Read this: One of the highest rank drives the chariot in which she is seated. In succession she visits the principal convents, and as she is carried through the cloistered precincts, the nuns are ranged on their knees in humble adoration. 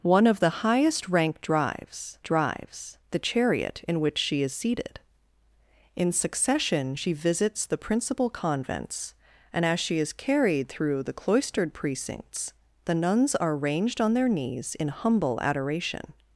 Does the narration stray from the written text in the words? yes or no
yes